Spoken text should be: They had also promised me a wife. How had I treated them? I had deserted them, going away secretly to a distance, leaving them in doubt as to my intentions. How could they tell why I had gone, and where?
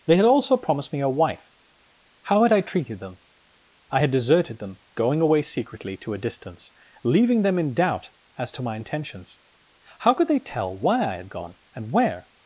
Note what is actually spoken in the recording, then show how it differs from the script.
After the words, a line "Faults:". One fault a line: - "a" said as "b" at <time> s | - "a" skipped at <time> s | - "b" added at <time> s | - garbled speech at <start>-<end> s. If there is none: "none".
They had also promised me a wife. How had I treated them? I had deserted them, going away secretly to a distance, leaving them in doubt as to my intentions. How could they tell why I had gone, and where?
Faults:
none